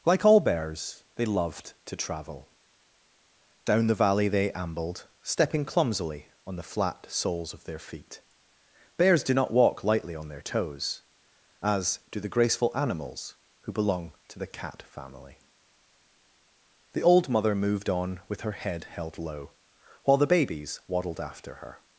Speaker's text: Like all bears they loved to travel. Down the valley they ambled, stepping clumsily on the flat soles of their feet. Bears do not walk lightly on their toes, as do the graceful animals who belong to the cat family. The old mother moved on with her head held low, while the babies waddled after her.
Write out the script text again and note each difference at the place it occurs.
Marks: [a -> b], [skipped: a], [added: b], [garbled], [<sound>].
Like all bears they loved to travel. Down the valley they ambled, stepping clumsily on the flat soles of their feet. Bears do not walk lightly on their toes, as do the graceful animals who belong to the cat family. The old mother moved on with her head held low, while the babies waddled after her.